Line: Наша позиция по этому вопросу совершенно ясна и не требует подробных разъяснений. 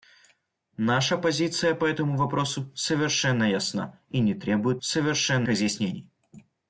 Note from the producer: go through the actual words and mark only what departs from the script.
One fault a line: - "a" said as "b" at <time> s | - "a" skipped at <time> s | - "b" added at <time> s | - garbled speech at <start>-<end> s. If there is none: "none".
- "подробных" said as "совершенно" at 4.8 s